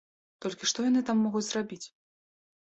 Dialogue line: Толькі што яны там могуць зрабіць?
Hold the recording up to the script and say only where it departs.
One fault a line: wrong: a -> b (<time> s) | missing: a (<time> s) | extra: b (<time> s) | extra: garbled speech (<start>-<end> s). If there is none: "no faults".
no faults